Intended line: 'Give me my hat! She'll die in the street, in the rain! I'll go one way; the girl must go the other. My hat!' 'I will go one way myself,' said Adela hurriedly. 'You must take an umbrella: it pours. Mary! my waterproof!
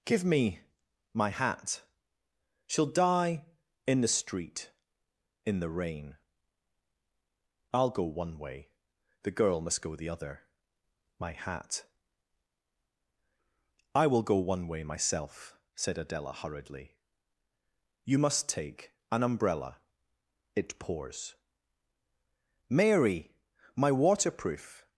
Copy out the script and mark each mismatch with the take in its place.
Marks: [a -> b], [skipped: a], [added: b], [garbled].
'Give me my hat! She'll die in the street, in the rain! I'll go one way; the girl must go the other. My hat!' 'I will go one way myself,' said Adela hurriedly. 'You must take an umbrella: it pours. Mary! my waterproof!